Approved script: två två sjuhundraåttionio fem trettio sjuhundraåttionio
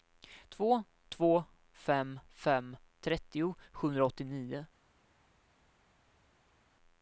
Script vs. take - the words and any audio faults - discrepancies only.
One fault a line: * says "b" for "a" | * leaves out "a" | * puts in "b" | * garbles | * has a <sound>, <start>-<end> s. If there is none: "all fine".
* says "fem" for "sjuhundraåttionio"